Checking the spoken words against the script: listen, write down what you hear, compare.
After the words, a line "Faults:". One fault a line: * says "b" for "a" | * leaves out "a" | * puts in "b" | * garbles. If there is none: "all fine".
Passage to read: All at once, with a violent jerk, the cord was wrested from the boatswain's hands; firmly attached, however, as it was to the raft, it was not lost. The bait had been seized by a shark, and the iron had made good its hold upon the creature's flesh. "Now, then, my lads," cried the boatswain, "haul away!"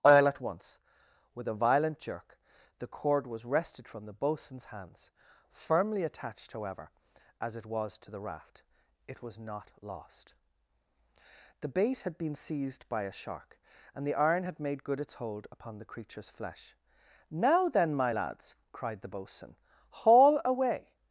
All at once, with a violent jerk, the cord was wrested from the boatswain's hands; firmly attached, however, as it was to the raft, it was not lost. The bait had been seized by a shark, and the iron had made good its hold upon the creature's flesh. "Now, then, my lads," cried the boatswain, "haul away!"
Faults:
all fine